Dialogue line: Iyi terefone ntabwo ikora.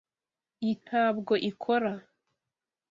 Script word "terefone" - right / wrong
wrong